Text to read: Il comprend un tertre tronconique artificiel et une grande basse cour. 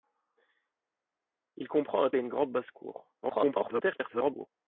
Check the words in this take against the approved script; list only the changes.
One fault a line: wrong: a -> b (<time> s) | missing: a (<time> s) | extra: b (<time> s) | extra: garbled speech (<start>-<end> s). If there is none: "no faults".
missing: tertre tronconique artificiel (2.1 s)
extra: garbled speech (3.2-4.5 s)